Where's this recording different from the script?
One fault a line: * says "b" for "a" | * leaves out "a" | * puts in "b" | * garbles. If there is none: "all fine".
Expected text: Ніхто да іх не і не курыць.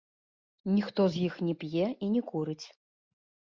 * says "з" for "да"
* puts in "п'е"